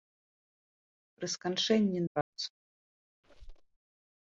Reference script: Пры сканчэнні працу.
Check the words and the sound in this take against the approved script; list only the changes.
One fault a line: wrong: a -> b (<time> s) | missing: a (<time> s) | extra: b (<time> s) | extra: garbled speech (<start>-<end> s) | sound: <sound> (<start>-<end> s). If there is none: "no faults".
sound: dropout (2.2-2.3 s)
sound: squeak (3.2-3.8 s)